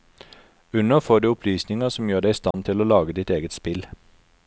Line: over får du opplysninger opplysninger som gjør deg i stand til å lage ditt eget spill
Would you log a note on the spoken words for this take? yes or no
yes